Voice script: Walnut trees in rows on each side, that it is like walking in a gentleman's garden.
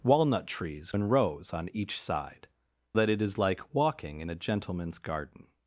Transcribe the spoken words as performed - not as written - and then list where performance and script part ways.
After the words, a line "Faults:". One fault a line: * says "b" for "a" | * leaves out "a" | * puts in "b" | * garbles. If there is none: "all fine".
Walnut trees in rows on each side, that it is like walking in a gentleman's garden.
Faults:
all fine